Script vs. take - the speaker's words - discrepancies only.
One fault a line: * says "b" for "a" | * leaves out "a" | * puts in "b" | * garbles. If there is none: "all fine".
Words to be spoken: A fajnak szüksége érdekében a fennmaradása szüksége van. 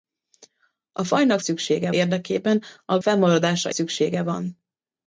all fine